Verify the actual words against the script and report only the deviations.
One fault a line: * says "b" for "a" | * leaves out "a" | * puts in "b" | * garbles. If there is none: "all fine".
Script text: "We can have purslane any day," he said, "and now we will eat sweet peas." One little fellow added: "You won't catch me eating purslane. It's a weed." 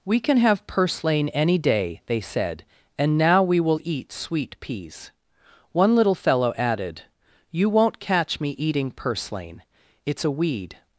* says "they" for "he"